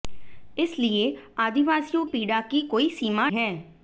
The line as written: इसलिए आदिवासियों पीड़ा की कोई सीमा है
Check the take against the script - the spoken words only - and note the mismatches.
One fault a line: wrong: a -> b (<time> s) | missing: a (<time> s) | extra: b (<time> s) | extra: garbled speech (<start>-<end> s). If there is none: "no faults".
no faults